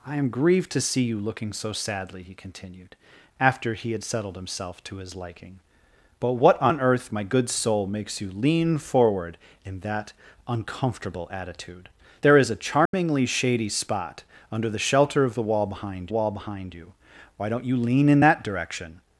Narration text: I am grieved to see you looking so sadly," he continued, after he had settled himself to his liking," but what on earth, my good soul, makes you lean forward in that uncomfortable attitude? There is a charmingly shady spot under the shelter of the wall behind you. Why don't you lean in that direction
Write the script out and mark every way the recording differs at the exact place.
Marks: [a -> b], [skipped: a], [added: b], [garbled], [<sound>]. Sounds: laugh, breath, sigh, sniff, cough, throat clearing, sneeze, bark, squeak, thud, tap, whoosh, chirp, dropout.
I am grieved to see you looking so sadly," he continued, after he had settled himself to his liking," but what on earth, my good soul, makes you lean forward in that uncomfortable attitude? There is a charmingly [dropout] shady spot under the shelter of the wall behind [added: wall behind] you. Why don't you lean in that direction